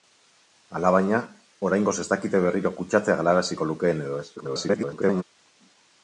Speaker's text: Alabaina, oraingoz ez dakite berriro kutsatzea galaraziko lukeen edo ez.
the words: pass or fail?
fail